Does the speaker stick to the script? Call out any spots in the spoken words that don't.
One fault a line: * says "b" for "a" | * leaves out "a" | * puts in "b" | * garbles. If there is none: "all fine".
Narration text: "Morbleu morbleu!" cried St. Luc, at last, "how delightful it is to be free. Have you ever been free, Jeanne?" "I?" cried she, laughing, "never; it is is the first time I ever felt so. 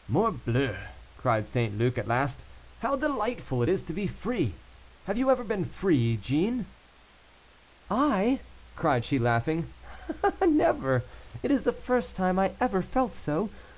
* leaves out "morbleu"
* leaves out "is"